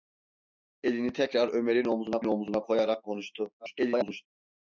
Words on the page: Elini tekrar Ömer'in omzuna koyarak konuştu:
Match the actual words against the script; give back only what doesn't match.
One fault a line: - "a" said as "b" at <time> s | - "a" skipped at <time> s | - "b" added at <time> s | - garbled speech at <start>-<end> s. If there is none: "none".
- "omzuna" added at 2.2 s
- garbled speech at 3.6-4.3 s